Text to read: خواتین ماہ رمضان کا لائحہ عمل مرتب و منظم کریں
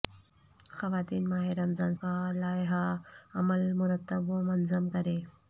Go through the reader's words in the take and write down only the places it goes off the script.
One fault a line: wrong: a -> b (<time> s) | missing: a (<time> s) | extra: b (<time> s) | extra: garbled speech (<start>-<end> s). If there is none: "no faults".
no faults